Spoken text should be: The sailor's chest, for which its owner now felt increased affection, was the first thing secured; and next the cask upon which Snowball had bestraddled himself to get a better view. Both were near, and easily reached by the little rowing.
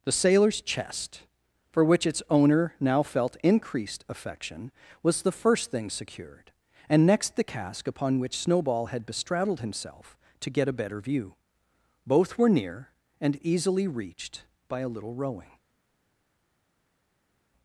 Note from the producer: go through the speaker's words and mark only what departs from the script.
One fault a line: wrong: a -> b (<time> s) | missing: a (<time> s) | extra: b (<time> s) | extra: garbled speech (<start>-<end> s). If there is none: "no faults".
wrong: the -> a (14.8 s)